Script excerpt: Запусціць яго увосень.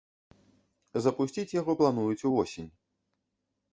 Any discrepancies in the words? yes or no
yes